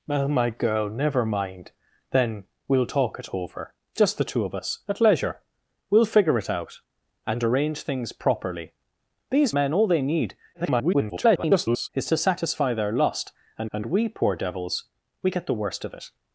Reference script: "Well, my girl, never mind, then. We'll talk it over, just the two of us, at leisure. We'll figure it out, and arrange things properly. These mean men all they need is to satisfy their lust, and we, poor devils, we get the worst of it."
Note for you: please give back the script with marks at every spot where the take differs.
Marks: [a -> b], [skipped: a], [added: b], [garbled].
"Well, my girl, never mind, then. We'll talk it over, just the two of us, at leisure. We'll figure it out, and arrange things properly. These [skipped: mean] men all they need [garbled] is to satisfy their lust, and [added: and] we, poor devils, we get the worst of it."